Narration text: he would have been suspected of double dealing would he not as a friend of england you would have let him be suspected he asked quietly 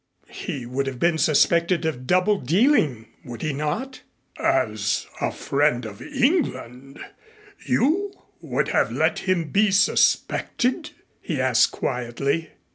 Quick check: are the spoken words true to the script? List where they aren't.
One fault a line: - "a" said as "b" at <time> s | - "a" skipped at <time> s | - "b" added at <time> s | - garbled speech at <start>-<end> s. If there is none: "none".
none